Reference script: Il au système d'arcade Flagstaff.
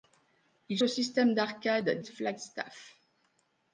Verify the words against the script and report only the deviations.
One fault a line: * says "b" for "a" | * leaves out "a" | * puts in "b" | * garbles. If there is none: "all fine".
all fine